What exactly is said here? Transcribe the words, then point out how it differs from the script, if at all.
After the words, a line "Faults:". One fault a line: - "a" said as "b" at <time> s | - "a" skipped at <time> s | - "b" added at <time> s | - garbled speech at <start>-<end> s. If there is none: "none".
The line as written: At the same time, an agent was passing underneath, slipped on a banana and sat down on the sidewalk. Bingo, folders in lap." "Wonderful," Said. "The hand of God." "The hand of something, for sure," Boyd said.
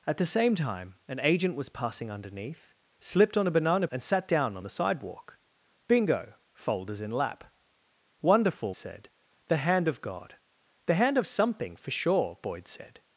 At the same time, an agent was passing underneath, slipped on a banana and sat down on the sidewalk. Bingo, folders in lap." "Wonderful," Said. "The hand of God." "The hand of something, for sure," Boyd said.
Faults:
none